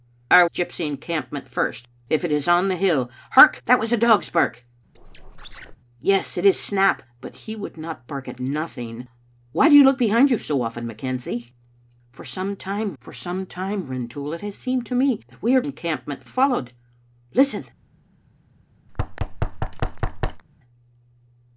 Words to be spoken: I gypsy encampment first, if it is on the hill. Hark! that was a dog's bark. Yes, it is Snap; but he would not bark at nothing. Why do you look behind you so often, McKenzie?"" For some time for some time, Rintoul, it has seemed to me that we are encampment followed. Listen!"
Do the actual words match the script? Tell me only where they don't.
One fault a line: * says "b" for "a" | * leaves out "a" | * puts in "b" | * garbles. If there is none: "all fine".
all fine